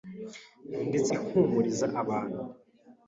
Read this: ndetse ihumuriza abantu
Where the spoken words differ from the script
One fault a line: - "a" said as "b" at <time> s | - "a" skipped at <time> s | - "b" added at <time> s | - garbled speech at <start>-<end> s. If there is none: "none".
none